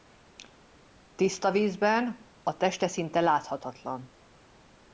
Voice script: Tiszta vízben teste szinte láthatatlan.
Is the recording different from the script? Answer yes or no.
yes